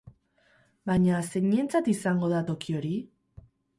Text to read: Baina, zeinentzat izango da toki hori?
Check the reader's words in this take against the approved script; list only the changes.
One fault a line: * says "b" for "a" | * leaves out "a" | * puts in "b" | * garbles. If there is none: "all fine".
all fine